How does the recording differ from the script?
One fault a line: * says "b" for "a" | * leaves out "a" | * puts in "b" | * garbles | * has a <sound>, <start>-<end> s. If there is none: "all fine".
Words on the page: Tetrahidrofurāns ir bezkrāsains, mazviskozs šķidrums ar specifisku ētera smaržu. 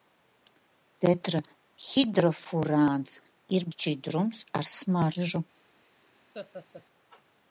* leaves out "bezkrāsains mazviskozs"
* leaves out "specifisku ētera"
* has a laugh, 6.3-6.9 s